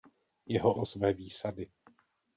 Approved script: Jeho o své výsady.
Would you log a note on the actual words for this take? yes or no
no